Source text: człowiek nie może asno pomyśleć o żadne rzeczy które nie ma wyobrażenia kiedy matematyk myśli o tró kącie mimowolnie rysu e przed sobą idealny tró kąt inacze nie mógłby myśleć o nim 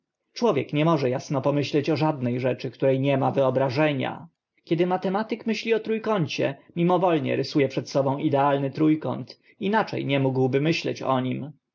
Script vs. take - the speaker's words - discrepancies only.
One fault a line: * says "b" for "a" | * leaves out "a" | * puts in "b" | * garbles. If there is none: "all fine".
all fine